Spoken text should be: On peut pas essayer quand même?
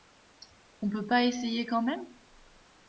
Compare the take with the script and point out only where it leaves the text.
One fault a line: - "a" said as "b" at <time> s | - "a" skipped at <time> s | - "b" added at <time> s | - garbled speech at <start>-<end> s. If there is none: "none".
none